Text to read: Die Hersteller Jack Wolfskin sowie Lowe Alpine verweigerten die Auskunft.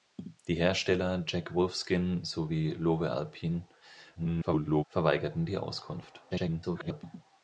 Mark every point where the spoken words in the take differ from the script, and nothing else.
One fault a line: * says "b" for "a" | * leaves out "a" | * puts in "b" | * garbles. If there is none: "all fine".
* garbles
* garbles